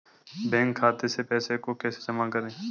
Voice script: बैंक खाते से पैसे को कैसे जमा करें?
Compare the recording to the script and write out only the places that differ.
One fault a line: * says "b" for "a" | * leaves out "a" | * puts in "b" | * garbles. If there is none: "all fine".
all fine